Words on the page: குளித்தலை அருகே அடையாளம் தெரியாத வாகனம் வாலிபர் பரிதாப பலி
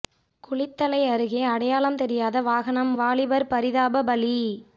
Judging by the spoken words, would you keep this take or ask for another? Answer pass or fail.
pass